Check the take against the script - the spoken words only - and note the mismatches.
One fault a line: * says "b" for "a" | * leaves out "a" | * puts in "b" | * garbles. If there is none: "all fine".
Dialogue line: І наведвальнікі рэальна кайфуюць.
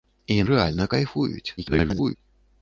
* leaves out "наведвальнікі"
* garbles